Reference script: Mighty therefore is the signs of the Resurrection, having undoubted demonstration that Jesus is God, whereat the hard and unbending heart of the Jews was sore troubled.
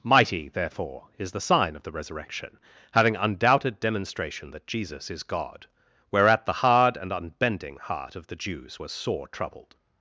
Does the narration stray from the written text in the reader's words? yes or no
yes